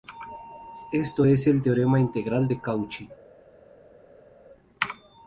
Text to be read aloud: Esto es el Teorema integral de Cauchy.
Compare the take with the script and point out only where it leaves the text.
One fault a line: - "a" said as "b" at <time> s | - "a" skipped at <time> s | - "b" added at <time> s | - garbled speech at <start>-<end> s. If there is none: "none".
none